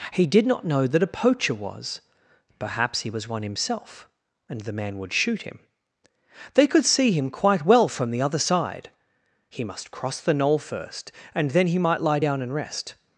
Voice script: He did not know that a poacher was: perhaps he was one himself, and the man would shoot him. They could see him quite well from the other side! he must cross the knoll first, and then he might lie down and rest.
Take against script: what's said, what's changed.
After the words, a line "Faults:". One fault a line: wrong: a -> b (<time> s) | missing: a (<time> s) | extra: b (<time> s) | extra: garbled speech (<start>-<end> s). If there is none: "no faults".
He did not know that a poacher was: perhaps he was one himself, and the man would shoot him. They could see him quite well from the other side! he must cross the knoll first, and then he might lie down and rest.
Faults:
no faults